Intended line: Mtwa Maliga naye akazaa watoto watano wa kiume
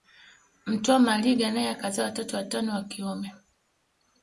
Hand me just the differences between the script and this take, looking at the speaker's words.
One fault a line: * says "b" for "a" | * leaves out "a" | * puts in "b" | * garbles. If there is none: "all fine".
all fine